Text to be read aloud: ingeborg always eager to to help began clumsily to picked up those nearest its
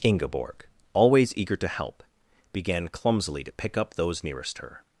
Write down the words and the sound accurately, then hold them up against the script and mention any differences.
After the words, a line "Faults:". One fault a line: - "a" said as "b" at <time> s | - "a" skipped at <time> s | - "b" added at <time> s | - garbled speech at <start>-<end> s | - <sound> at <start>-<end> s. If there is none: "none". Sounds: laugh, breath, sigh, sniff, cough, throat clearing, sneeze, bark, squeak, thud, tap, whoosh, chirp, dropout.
ingeborg always eager to help began clumsily to pick up those nearest her
Faults:
- "to" skipped at 1.7 s
- "picked" said as "pick" at 3.5 s
- "its" said as "her" at 4.6 s